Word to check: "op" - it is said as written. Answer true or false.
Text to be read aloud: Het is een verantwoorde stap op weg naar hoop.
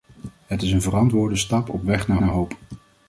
true